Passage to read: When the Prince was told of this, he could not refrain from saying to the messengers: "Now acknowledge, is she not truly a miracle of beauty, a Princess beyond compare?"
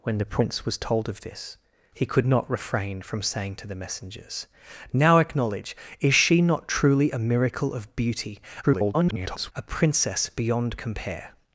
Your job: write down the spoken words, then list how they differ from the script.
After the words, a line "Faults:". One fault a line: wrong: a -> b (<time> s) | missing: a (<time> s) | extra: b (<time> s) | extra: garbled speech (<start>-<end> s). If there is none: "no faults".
When the Prince was told of this, he could not refrain from saying to the messengers: "Now acknowledge, is she not truly a miracle of beauty, [garbled] a Princess beyond compare?"
Faults:
extra: garbled speech (8.6-9.5 s)